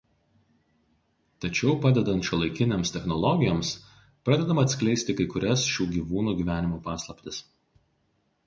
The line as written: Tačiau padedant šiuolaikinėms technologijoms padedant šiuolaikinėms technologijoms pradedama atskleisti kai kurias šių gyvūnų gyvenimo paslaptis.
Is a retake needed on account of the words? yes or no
yes